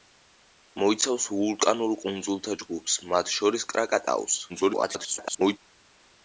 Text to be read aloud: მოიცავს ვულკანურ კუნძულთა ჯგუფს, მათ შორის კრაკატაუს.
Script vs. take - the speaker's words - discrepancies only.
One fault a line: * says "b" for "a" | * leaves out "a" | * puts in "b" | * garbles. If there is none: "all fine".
* garbles